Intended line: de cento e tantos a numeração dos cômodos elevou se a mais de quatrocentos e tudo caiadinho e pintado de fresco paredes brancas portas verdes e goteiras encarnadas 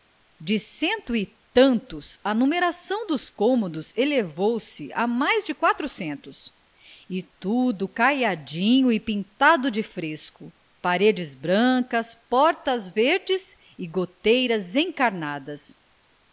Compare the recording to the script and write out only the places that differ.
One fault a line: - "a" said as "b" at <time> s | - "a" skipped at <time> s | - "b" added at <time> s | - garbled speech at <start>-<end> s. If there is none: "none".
none